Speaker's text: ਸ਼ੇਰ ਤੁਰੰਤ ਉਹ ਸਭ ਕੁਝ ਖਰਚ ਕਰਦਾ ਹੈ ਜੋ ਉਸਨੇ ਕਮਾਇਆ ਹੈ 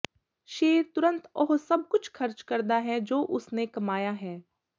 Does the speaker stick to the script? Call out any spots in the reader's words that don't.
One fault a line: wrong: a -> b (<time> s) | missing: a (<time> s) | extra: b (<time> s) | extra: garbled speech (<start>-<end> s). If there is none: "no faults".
no faults